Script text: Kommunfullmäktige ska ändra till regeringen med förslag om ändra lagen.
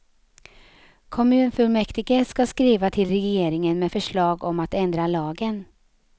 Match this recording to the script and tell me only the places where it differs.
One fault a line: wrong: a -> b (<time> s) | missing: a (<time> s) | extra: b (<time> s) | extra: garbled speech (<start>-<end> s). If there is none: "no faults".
wrong: ändra -> skriva (2.5 s)
extra: att (4.6 s)